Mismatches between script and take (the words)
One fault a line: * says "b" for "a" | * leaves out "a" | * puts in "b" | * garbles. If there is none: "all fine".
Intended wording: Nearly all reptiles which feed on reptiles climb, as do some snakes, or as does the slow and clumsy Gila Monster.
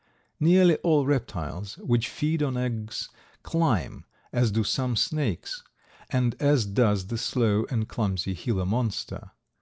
* says "eggs" for "reptiles"
* says "and" for "or"